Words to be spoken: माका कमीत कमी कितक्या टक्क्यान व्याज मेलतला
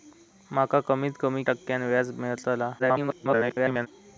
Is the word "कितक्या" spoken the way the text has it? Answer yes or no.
no